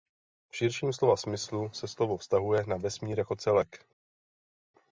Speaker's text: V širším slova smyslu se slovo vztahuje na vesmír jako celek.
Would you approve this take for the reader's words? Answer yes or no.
yes